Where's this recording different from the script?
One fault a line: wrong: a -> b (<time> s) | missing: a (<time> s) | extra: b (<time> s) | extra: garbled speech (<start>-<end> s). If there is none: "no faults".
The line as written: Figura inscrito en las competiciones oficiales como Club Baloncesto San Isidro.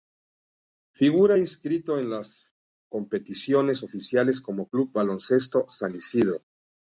no faults